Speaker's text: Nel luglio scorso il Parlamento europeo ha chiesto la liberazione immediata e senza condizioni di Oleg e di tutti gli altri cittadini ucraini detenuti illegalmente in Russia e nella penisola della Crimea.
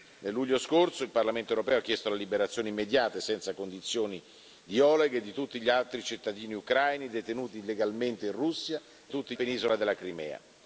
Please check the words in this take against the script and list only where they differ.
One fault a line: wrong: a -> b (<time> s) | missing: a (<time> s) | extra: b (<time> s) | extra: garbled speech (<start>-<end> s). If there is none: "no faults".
wrong: nella -> tutti (9.1 s)